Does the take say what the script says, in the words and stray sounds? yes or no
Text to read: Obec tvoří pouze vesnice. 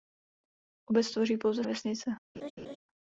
no